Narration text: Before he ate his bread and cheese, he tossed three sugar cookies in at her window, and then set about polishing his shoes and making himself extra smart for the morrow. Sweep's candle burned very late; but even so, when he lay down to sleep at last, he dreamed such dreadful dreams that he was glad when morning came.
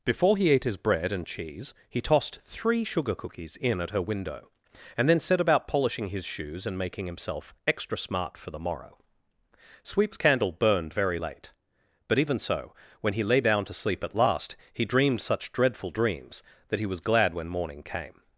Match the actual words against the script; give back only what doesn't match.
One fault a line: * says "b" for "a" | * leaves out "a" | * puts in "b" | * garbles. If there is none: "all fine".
all fine